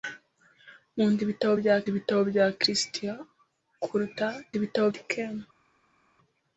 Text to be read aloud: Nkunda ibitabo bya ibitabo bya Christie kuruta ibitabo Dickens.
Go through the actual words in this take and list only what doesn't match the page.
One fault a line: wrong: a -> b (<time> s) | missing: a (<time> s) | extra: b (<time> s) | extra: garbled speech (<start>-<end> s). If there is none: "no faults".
no faults